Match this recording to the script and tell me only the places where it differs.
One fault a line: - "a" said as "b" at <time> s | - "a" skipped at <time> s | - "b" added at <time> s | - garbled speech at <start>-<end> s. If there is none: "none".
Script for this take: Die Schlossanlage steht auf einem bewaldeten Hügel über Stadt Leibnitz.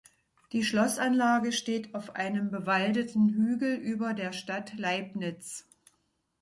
- "der" added at 4.1 s